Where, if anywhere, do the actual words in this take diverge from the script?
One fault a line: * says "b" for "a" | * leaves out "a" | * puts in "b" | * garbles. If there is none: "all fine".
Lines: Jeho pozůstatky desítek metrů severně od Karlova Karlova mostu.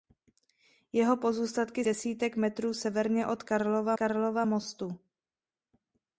all fine